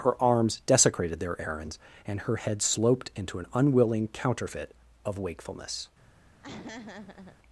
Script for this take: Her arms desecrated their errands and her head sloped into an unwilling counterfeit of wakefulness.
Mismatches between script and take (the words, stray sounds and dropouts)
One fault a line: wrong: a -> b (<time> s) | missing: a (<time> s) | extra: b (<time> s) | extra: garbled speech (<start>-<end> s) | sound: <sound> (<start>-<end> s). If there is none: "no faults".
sound: laugh (6.4-7.4 s)